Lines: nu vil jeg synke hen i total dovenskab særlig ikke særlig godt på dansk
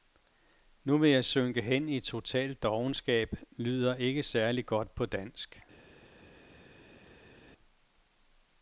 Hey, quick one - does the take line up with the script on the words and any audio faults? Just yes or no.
no